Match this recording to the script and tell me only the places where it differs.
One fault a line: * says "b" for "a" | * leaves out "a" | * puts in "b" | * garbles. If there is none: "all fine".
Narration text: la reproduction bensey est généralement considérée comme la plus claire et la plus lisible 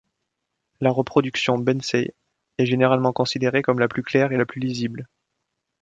all fine